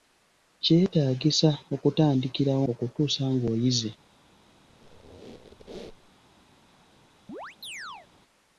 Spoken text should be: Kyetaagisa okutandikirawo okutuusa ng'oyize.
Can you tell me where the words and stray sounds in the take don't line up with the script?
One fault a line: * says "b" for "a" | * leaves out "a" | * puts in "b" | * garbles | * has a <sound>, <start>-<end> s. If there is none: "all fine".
* has a squeak, 4.7-6.1 s
* has a chirp, 7.3-8.1 s